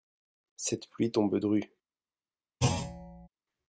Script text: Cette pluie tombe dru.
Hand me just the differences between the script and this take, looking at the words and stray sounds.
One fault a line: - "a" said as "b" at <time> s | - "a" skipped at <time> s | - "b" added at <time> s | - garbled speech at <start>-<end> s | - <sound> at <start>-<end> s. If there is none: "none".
- thud at 2.6-3.3 s